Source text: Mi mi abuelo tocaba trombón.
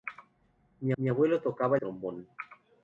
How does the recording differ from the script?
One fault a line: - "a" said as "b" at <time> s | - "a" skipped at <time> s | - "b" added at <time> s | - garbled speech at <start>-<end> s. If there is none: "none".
none